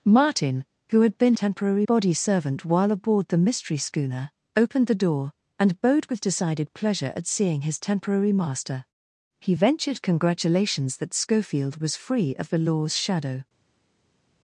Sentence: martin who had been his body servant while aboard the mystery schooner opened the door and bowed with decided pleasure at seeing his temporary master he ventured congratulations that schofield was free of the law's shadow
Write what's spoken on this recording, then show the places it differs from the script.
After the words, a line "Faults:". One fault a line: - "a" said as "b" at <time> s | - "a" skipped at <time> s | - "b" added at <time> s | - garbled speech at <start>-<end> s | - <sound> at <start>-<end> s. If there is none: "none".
martin who had been temporary body servant while aboard the mystery schooner opened the door and bowed with decided pleasure at seeing his temporary master he ventured congratulations that schofield was free of the law's shadow
Faults:
- "his" said as "temporary" at 1.3 s